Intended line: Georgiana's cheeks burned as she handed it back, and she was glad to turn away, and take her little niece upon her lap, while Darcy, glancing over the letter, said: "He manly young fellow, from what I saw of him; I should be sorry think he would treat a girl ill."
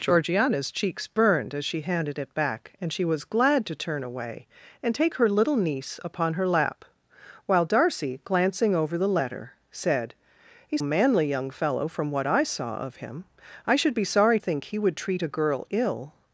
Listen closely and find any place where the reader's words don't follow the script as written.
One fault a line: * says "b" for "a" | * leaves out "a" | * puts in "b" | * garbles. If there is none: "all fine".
all fine